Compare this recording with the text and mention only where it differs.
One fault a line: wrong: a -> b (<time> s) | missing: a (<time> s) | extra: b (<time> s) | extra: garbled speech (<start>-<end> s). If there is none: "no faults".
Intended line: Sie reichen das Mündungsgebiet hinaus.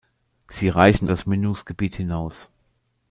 no faults